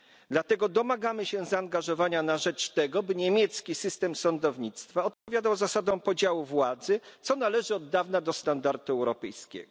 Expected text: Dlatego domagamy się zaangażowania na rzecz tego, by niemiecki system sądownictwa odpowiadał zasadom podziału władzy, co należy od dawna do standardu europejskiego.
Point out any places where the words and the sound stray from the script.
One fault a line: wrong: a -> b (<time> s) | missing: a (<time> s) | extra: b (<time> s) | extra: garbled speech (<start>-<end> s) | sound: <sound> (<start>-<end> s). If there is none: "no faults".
sound: dropout (5.1-5.3 s)